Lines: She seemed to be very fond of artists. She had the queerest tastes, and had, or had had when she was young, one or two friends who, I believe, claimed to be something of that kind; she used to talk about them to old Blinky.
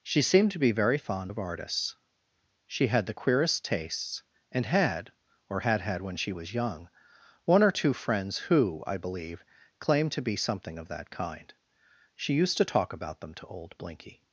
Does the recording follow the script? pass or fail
pass